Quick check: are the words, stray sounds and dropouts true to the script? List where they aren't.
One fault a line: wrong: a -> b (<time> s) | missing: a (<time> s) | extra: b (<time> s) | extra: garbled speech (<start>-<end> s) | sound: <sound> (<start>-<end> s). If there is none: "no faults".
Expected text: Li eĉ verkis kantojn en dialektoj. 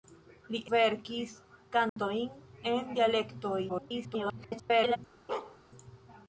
missing: eĉ (0.6 s)
sound: dropout (1.9-2.0 s)
extra: garbled speech (3.7-5.0 s)
sound: bark (5.3-5.6 s)